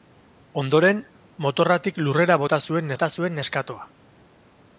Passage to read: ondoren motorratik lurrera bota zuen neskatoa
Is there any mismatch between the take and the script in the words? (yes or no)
yes